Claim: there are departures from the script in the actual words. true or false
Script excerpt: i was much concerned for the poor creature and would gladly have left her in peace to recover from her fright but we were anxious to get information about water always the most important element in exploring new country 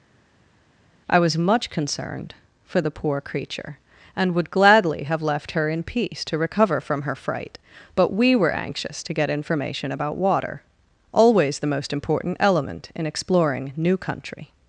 false